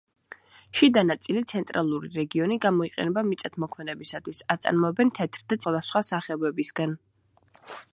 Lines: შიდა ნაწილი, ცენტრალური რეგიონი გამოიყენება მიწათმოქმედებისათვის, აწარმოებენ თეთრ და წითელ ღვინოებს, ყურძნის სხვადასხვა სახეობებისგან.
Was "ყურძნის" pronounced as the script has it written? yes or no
no